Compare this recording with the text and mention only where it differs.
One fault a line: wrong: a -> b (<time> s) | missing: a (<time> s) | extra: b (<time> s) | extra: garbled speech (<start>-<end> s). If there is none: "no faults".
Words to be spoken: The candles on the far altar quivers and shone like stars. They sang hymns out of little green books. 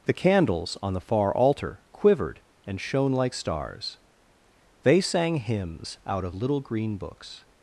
wrong: quivers -> quivered (1.9 s)